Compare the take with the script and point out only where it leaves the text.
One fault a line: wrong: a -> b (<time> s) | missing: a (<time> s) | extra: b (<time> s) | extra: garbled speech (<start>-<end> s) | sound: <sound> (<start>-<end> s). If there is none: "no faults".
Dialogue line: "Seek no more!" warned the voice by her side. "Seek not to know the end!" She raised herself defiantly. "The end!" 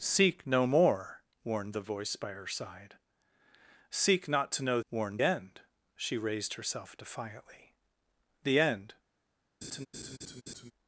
wrong: the -> warned (4.9 s)
sound: laugh (9.6-10.7 s)